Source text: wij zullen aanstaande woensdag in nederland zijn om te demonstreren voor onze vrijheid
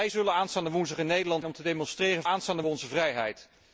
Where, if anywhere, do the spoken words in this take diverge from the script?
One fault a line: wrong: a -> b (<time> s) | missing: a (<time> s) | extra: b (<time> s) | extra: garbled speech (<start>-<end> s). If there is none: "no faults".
missing: zijn (1.5 s)
wrong: voor -> aanstaande (2.3 s)